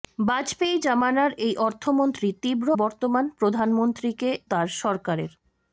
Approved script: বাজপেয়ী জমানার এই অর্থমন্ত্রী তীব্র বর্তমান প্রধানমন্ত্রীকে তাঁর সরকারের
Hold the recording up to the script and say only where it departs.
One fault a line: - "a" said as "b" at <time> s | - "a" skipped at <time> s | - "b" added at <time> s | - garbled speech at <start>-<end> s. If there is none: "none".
none